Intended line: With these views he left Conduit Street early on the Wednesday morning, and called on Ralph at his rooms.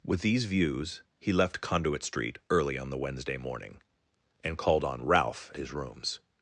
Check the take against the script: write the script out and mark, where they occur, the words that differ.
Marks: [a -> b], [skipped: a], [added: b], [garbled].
With these views he left Conduit Street early on the Wednesday morning, and called on Ralph [skipped: at] his rooms.